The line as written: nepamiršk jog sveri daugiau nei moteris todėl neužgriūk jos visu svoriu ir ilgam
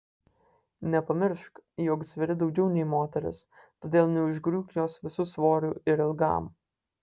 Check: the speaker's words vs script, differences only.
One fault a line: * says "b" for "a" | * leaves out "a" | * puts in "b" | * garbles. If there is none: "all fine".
all fine